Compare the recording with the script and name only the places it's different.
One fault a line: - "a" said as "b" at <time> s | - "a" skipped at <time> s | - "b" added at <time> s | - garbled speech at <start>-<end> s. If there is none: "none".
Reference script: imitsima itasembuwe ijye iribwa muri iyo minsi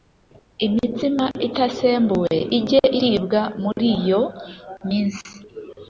none